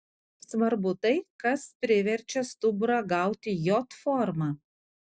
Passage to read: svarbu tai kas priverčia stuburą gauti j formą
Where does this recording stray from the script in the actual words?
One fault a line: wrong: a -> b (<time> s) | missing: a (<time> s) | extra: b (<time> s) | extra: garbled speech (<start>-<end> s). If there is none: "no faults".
no faults